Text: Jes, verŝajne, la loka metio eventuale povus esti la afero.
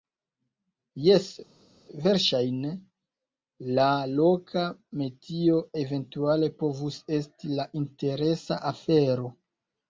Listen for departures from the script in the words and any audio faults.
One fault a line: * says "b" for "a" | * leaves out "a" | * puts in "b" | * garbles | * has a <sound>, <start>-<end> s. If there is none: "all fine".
* puts in "interesa"